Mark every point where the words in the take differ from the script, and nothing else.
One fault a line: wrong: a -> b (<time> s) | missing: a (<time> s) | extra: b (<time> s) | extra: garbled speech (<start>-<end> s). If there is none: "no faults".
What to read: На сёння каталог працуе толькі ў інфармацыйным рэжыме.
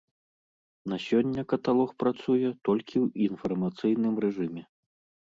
no faults